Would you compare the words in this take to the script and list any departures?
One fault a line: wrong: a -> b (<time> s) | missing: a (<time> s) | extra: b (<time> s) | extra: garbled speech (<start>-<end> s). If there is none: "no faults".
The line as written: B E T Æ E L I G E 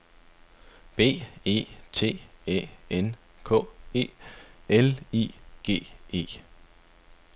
extra: N K (2.9 s)